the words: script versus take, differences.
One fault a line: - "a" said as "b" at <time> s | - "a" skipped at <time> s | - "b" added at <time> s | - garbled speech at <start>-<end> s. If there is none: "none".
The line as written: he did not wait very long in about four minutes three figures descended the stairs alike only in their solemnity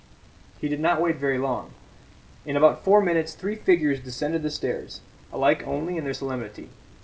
none